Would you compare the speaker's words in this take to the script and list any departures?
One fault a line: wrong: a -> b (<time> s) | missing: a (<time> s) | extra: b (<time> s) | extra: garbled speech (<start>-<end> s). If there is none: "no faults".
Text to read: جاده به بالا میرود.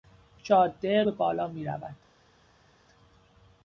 no faults